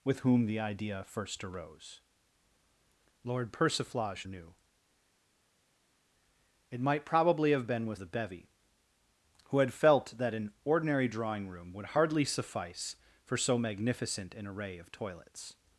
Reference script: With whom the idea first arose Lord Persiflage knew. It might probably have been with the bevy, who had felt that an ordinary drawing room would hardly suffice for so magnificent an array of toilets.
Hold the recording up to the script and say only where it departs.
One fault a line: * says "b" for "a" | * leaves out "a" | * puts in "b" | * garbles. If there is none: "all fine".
all fine